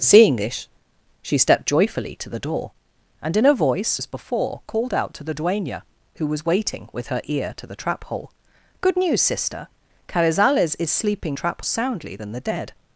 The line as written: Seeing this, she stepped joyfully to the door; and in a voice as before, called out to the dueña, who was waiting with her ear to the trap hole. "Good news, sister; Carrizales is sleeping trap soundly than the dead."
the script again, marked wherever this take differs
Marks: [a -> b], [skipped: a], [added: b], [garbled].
Seeing this, she stepped joyfully to the door; and in a voice as before, called out to the dueña, who was waiting with her ear to the trap hole. "Good news, sister; Carrizales is sleeping trap soundly than the dead."